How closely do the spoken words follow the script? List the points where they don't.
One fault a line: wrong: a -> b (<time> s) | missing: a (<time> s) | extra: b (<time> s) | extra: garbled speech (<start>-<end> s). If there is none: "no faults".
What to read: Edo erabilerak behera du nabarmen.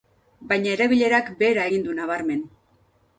wrong: Edo -> Baina (0.5 s)
extra: egin (1.7 s)